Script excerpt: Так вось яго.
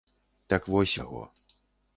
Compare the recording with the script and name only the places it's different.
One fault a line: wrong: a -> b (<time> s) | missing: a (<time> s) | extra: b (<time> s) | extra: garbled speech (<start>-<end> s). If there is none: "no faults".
no faults